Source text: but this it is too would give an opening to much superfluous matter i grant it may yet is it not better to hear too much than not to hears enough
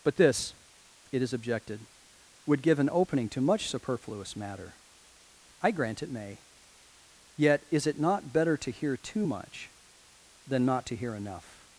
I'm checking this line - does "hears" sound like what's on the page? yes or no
no